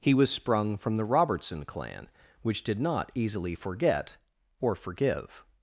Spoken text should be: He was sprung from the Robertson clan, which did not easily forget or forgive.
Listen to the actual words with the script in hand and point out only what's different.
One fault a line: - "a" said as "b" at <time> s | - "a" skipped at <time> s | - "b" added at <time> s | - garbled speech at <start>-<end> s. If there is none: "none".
none